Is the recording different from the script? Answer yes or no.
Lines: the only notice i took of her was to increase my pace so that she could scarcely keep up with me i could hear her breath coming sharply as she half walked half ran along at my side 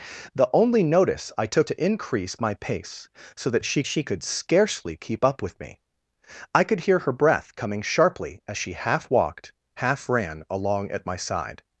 yes